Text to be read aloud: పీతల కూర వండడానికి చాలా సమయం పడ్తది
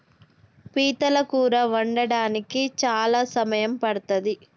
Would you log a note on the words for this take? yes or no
no